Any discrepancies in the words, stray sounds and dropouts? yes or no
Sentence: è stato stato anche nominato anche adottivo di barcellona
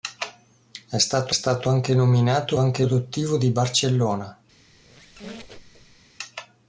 yes